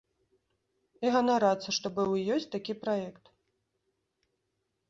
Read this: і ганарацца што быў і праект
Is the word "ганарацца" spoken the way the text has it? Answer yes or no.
yes